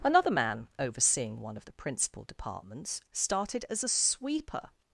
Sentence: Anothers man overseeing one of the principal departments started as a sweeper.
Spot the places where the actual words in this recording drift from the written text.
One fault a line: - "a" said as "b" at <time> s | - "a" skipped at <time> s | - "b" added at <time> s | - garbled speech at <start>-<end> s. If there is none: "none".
- "Anothers" said as "Another" at 0.0 s